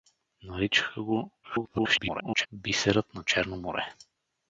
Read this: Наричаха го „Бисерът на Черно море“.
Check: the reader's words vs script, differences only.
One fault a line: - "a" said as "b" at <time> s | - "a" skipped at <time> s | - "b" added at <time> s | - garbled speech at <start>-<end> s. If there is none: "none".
- garbled speech at 1.4-2.5 s